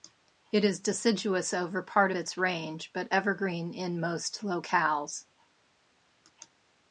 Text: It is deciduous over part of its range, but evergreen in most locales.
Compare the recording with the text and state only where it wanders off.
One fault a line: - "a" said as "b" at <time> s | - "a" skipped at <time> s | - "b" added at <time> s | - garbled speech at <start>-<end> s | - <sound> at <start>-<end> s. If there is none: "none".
- "of" skipped at 2.1 s